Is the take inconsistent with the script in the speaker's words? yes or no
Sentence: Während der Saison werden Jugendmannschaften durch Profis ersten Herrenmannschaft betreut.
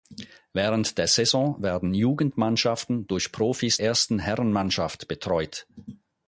no